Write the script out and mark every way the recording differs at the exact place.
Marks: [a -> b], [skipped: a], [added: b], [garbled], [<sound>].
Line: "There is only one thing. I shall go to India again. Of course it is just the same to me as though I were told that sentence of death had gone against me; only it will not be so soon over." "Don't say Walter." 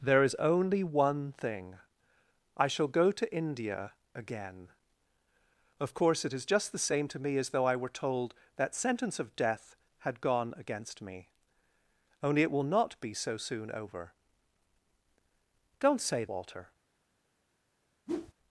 "There is only one thing. I shall go to India again. Of course it is just the same to me as though I were told that sentence of death had gone against me; only it will not be so soon over." "Don't say Walter." [whoosh]